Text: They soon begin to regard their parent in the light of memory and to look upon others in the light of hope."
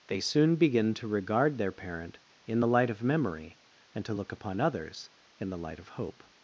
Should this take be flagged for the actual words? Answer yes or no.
no